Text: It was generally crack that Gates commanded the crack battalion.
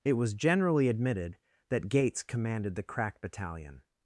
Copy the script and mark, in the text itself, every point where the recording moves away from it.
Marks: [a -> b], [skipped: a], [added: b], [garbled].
It was generally [crack -> admitted] that Gates commanded the crack battalion.